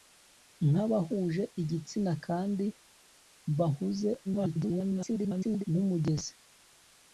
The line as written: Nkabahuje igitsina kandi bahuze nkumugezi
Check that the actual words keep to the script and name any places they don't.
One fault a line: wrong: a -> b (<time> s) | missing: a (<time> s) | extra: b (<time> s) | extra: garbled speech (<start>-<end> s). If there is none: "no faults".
extra: garbled speech (4.2-5.6 s)